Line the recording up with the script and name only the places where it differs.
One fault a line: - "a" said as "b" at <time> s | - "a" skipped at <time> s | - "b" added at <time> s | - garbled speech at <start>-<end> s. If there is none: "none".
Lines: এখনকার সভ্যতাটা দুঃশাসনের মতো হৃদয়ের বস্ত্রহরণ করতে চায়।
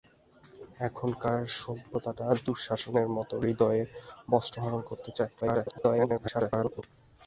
- garbled speech at 5.4-6.8 s